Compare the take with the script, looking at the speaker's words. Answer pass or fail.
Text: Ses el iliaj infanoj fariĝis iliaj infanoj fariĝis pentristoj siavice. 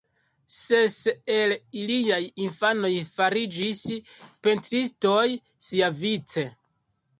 fail